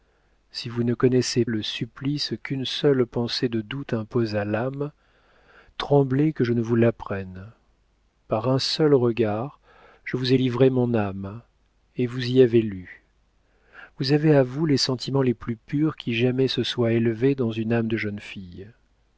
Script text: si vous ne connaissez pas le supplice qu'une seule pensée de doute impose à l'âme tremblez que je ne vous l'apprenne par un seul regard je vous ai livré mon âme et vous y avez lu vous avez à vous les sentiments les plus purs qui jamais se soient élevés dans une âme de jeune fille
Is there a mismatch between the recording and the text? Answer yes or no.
yes